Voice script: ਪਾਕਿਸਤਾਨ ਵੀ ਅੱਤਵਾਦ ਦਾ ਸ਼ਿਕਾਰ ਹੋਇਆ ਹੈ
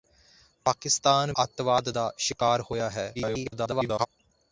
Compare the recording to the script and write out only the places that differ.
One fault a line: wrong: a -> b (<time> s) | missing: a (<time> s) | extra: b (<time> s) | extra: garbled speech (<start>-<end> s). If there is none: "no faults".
missing: ਵੀ (1.3 s)
extra: garbled speech (3.1-4.1 s)